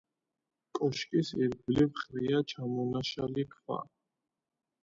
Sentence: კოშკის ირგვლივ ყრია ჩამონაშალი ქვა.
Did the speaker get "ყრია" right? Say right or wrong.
right